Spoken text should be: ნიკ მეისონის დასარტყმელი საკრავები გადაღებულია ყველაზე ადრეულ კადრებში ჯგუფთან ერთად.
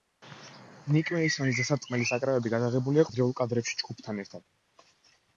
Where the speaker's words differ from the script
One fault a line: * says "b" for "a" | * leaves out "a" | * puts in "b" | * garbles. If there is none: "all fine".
* leaves out "ყველაზე"